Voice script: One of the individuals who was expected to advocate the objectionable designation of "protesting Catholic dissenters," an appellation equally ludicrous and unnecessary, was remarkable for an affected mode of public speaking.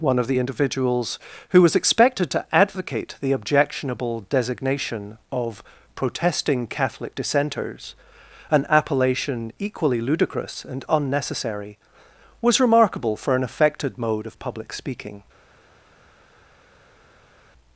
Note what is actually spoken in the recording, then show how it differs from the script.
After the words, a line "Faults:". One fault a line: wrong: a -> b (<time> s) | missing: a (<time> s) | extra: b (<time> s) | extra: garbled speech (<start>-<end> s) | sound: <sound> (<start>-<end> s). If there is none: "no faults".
One of the individuals who was expected to advocate the objectionable designation of "protesting Catholic dissenters," an appellation equally ludicrous and unnecessary, was remarkable for an affected mode of public speaking.
Faults:
no faults